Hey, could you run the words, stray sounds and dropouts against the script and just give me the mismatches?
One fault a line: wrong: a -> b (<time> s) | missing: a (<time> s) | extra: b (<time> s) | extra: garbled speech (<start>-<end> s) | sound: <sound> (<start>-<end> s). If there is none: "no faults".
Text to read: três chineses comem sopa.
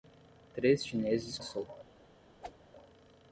missing: comem (1.4 s)
sound: whoosh (2.4-2.6 s)